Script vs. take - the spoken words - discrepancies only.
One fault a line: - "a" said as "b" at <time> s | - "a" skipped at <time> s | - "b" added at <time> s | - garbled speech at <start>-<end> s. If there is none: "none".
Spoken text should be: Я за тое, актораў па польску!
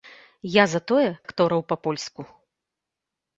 none